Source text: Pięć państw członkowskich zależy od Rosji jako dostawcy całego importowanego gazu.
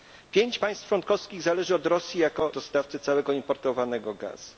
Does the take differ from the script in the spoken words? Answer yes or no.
no